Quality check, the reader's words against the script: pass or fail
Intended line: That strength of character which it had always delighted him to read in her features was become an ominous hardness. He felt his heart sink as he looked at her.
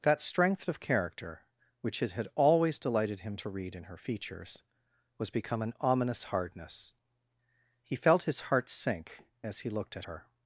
pass